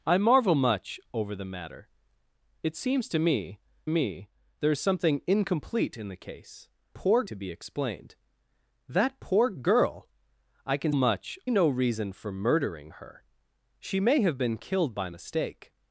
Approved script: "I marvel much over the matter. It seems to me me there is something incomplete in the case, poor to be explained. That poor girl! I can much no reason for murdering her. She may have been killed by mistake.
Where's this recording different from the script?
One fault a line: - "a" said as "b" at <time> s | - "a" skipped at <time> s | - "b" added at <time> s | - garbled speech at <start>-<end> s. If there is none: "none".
none